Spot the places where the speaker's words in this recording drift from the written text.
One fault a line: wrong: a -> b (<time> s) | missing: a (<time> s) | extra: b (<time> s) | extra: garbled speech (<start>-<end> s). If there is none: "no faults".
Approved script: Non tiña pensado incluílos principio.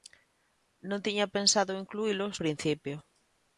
no faults